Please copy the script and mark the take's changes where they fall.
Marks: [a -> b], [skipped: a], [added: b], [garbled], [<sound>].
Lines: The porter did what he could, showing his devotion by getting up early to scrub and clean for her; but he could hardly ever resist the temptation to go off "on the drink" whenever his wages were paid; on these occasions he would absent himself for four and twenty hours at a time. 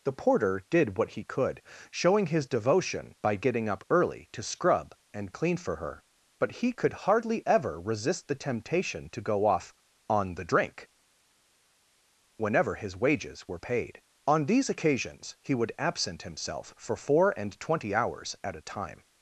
The porter did what he could, showing his devotion by getting up early to scrub and clean for her; but he could hardly ever resist the temptation to go off "on the drink" whenever his wages were paid; on these occasions he would absent himself for four and twenty hours at a time.